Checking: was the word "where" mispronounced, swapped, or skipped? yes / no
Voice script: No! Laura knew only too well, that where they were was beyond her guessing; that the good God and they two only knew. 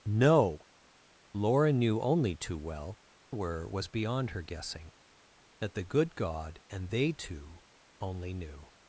yes